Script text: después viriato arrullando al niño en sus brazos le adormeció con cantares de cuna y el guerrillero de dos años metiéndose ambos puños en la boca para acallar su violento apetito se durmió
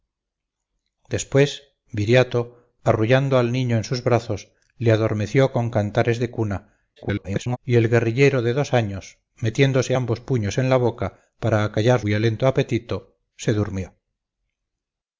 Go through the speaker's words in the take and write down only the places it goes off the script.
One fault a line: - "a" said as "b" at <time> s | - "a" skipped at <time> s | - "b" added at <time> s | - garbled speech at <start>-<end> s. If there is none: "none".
- garbled speech at 7.0-7.6 s
- "su" skipped at 12.0 s